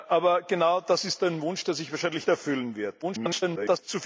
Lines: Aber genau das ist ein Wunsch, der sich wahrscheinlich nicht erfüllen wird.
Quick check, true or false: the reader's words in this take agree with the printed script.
false